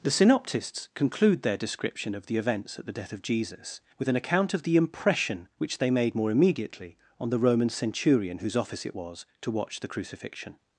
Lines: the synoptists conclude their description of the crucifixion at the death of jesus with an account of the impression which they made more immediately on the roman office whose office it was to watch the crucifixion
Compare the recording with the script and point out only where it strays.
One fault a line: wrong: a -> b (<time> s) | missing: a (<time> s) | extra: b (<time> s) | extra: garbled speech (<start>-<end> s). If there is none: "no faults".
wrong: crucifixion -> events (2.4 s)
wrong: office -> centurion (7.7 s)